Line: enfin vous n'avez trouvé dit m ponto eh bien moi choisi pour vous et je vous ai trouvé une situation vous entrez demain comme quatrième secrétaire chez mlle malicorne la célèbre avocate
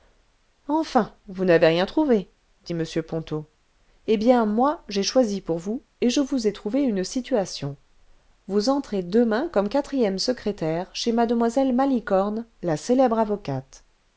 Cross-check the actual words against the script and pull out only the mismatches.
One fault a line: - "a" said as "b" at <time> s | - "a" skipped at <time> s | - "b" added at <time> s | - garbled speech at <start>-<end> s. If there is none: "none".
- "rien" added at 1.7 s
- "j'ai" added at 4.9 s